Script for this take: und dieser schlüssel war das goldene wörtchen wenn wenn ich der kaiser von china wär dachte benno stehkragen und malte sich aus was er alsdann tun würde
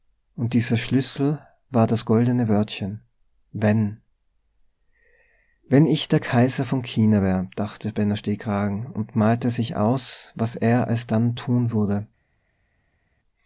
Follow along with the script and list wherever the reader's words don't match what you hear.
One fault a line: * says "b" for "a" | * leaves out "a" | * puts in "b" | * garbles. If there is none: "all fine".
all fine